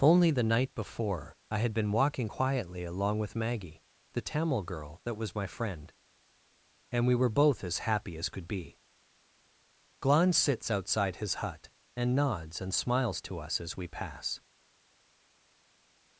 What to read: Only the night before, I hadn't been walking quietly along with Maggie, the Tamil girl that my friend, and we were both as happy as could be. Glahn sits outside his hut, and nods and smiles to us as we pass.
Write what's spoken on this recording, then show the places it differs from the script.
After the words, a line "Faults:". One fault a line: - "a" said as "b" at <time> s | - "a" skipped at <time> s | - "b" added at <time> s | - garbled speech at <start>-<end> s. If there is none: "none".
Only the night before, I had been walking quietly along with Maggie, the Tamil girl that was my friend, and we were both as happy as could be. Glahn sits outside his hut, and nods and smiles to us as we pass.
Faults:
- "hadn't" said as "had" at 1.6 s
- "was" added at 5.2 s